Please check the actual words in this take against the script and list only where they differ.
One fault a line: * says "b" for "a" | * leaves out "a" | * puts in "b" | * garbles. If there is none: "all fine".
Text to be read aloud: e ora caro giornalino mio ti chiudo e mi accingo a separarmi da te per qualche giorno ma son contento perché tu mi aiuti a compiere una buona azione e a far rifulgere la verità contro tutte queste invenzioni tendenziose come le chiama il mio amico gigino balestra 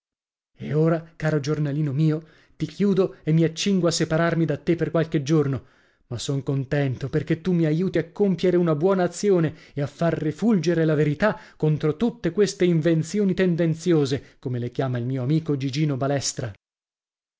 all fine